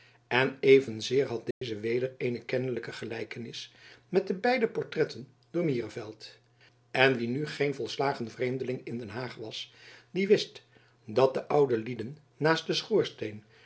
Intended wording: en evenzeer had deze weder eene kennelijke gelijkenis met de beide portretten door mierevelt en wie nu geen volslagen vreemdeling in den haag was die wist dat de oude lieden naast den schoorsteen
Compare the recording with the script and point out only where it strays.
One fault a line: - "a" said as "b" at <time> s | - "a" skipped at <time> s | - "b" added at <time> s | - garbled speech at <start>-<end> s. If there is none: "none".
none